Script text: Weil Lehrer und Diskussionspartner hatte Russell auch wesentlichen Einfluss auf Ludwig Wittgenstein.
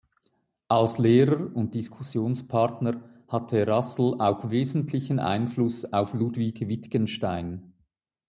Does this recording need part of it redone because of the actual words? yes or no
yes